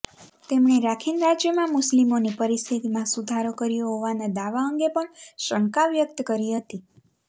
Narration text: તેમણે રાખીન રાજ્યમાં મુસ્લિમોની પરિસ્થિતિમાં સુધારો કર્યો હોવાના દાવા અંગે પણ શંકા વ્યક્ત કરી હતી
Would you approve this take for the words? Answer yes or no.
yes